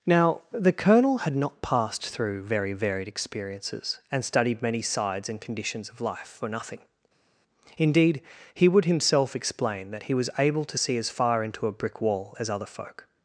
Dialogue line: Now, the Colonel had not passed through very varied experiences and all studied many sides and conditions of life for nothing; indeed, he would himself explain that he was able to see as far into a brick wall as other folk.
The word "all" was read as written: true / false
false